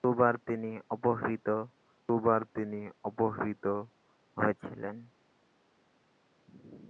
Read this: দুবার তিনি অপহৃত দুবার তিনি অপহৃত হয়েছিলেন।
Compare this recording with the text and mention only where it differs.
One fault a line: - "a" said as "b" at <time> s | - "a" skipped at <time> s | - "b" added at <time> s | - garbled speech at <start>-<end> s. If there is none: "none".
none